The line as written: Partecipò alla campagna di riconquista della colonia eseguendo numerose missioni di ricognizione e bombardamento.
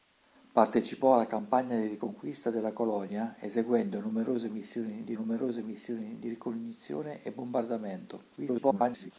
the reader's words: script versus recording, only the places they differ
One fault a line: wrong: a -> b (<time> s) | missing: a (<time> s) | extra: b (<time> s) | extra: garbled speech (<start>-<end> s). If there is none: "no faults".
extra: numerose missioni di (5.1 s)
extra: garbled speech (8.4-9.1 s)